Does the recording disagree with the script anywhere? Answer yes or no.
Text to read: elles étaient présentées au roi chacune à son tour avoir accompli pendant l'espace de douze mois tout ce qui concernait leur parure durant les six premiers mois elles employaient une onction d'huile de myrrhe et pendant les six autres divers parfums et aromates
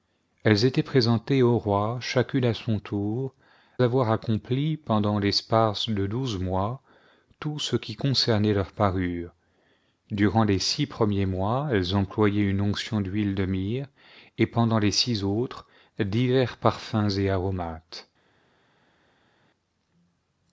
no